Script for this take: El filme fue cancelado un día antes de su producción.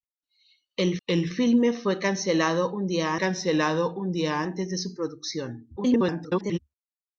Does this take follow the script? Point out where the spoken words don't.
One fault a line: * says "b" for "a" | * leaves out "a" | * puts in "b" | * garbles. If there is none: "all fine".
* puts in "el"
* puts in "cancelado un día"
* garbles